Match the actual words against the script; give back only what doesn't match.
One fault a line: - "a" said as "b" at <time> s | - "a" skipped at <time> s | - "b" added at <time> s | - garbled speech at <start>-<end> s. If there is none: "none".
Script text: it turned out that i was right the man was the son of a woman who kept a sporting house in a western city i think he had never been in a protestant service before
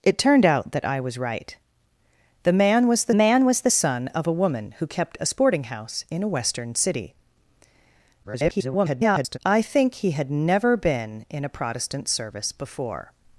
- "man was the" added at 3.1 s
- garbled speech at 8.2-9.4 s